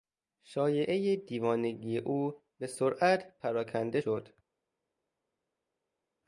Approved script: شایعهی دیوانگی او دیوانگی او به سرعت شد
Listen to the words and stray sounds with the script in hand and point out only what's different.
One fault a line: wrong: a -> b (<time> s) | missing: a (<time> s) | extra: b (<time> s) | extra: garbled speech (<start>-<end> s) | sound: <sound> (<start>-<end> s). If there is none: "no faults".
missing: دیوانگی او (2.4 s)
extra: پراکنده (3.4 s)